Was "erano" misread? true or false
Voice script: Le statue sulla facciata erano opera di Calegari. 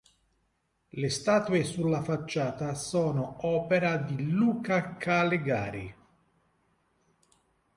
true